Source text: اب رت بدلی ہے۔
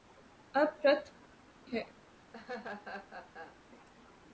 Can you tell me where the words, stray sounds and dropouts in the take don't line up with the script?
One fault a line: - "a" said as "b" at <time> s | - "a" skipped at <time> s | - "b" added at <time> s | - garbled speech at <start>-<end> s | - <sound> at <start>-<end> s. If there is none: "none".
- "بدلی" skipped at 1.0 s
- laugh at 2.3-3.6 s